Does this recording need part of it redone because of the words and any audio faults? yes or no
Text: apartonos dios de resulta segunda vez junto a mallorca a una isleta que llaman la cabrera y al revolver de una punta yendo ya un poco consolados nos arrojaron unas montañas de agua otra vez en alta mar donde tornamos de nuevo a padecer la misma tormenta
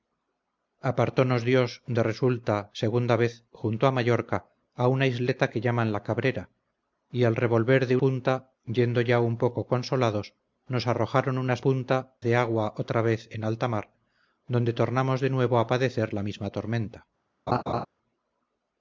yes